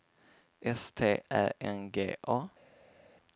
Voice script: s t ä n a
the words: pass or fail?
fail